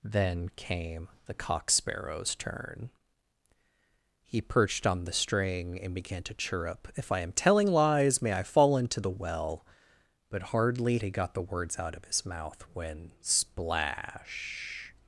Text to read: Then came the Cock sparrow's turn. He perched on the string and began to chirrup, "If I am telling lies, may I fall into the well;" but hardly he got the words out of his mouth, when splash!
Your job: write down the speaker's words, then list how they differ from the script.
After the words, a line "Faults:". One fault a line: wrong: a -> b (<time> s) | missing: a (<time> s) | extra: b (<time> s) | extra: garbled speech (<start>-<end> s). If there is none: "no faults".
Then came the Cock sparrow's turn. He perched on the string and began to chirrup, "If I am telling lies, may I fall into the well;" but hardly he got the words out of his mouth, when splash!
Faults:
no faults